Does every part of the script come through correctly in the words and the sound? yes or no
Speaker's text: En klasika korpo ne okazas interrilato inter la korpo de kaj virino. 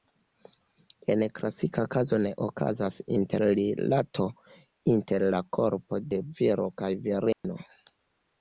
no